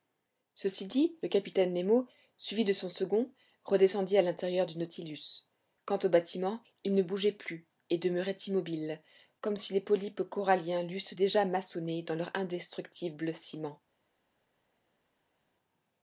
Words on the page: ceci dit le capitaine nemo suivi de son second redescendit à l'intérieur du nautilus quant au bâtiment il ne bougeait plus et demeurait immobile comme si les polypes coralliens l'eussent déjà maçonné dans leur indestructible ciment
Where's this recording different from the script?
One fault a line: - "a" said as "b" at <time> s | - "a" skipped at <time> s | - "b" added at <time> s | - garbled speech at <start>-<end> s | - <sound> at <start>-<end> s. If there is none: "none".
none